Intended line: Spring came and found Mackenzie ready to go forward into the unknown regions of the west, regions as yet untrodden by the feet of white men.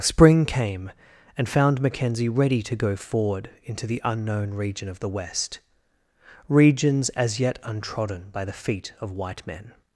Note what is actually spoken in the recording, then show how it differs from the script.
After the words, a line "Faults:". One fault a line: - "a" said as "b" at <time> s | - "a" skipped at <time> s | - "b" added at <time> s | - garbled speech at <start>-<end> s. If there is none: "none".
Spring came and found Mackenzie ready to go forward into the unknown region of the west, regions as yet untrodden by the feet of white men.
Faults:
- "regions" said as "region" at 4.5 s